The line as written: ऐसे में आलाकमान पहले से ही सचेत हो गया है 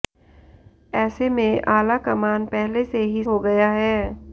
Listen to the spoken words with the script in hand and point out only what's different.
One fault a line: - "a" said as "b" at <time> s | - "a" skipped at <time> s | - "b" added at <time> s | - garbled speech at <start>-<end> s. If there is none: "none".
- "सचेत" skipped at 3.2 s